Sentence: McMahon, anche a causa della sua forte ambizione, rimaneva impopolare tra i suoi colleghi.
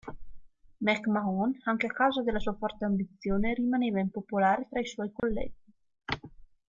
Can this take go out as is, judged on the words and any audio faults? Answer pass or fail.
fail